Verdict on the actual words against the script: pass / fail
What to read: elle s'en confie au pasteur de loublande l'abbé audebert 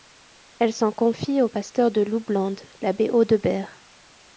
pass